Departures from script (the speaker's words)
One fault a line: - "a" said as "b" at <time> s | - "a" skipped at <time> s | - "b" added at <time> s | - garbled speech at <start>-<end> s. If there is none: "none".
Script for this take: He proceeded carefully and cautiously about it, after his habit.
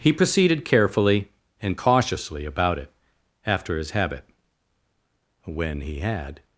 - "When he had" added at 5.4 s